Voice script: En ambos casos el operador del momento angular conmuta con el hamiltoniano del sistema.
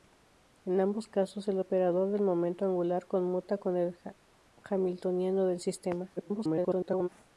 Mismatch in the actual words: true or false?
true